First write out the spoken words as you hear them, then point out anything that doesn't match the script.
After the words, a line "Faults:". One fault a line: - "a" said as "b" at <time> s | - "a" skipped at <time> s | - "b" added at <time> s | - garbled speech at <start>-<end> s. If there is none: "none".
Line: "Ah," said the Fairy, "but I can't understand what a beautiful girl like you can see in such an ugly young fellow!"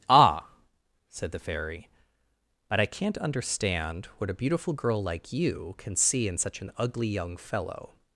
"Ah," said the Fairy, "but I can't understand what a beautiful girl like you can see in such an ugly young fellow!"
Faults:
none